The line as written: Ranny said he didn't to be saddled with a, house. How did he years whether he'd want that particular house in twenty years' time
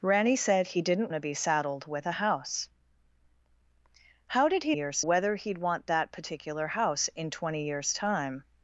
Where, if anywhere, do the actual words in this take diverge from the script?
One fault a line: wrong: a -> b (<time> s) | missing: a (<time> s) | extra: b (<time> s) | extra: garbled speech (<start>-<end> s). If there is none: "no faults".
no faults